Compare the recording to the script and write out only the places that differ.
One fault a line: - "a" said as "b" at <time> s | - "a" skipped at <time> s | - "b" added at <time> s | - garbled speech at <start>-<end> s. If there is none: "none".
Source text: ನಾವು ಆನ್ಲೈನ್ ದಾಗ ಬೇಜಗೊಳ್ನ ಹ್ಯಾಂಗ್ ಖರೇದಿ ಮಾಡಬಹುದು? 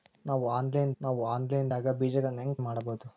- "ನಾವು ಆನ್ಲೈನ್" added at 1.0 s
- "ಖರೇದಿ" skipped at 2.6 s